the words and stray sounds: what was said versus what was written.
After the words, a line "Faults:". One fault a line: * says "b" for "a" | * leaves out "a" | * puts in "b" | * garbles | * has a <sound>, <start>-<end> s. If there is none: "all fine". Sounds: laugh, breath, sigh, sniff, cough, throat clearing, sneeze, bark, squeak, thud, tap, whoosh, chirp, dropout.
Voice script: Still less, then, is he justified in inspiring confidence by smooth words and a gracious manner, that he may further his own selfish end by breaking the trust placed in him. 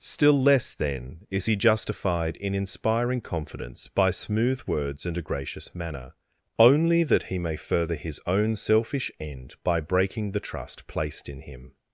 Still less, then, is he justified in inspiring confidence by smooth words and a gracious manner, only that he may further his own selfish end by breaking the trust placed in him.
Faults:
* puts in "only"